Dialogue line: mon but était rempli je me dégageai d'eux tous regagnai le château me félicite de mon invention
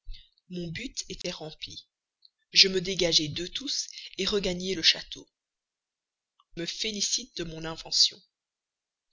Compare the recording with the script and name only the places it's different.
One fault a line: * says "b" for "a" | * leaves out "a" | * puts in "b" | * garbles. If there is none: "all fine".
all fine